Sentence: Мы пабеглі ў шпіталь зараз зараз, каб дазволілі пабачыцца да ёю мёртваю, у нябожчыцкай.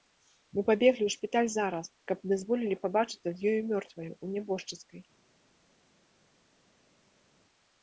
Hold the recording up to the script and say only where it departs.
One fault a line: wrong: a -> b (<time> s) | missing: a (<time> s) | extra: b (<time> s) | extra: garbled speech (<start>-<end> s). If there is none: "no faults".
missing: зараз (1.9 s)
wrong: да -> з (3.4 s)